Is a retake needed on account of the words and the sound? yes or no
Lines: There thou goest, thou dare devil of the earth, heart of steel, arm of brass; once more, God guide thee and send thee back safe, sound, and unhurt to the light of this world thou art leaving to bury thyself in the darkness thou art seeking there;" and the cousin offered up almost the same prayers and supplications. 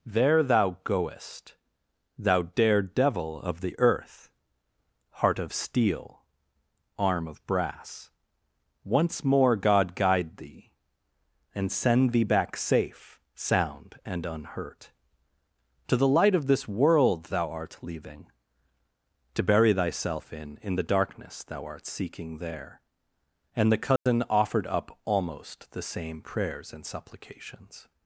yes